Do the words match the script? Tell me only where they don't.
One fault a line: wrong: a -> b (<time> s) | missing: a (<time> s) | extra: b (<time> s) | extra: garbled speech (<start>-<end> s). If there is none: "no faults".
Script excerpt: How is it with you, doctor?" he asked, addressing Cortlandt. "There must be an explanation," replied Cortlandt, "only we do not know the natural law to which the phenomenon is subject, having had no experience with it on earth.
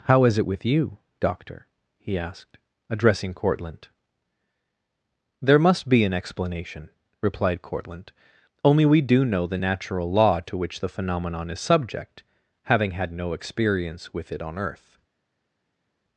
missing: not (9.2 s)